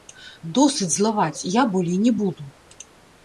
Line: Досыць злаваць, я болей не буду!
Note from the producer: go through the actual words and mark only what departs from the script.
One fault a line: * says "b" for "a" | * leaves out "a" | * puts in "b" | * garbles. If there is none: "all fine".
all fine